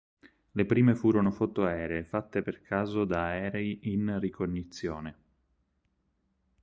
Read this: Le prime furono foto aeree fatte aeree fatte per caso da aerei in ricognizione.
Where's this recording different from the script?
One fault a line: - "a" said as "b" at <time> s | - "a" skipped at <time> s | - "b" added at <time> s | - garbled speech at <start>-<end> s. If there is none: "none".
- "aeree fatte" skipped at 2.4 s